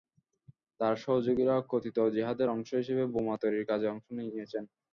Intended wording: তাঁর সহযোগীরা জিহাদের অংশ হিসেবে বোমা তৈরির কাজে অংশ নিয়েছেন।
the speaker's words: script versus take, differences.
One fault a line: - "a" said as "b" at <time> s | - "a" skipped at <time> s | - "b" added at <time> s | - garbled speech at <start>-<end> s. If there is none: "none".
- "কথিত" added at 1.7 s